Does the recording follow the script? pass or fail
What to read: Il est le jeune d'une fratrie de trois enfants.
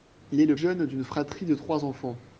pass